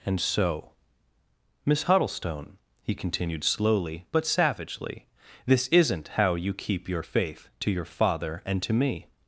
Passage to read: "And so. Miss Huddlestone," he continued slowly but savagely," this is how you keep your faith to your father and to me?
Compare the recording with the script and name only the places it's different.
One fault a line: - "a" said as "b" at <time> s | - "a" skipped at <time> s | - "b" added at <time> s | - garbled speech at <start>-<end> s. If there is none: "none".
- "is" said as "isn't" at 5.7 s